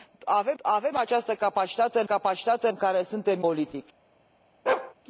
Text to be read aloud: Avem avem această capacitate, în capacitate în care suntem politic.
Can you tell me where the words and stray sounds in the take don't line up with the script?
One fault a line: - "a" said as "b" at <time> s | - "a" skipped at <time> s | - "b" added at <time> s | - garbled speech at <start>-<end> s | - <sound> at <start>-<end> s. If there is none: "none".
- bark at 4.7-4.9 s